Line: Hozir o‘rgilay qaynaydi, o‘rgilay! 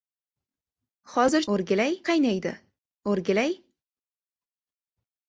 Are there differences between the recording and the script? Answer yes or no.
no